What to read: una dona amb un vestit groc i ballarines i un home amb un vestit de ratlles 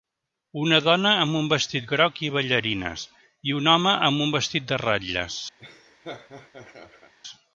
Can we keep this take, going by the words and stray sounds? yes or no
no